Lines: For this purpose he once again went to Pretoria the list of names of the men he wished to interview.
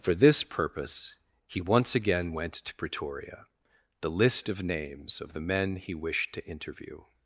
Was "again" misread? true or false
false